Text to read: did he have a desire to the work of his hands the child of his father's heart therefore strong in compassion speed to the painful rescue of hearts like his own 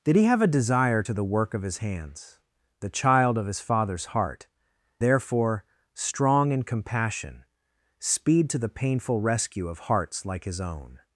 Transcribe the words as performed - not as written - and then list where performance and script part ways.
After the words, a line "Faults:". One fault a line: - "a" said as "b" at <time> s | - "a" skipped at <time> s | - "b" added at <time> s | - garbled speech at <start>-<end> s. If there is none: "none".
did he have a desire to the work of his hands the child of his father's heart therefore strong in compassion speed to the painful rescue of hearts like his own
Faults:
none